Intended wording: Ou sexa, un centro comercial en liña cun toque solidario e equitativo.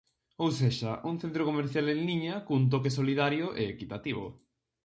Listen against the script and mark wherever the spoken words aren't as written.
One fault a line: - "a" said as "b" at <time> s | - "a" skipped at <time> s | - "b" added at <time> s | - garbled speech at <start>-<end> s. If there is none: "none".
none